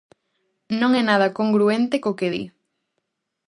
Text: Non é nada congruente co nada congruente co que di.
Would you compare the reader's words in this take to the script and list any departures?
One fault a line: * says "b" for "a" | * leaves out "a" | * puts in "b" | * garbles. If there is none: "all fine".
* leaves out "nada congruente co"